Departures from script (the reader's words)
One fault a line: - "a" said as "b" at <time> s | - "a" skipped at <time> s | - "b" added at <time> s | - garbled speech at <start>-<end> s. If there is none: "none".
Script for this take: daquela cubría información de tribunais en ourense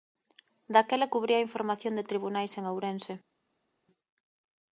none